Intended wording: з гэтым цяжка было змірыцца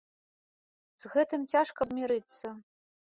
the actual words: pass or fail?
fail